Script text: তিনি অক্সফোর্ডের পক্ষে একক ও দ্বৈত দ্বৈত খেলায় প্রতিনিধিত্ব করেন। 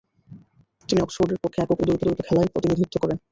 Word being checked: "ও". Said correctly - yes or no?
yes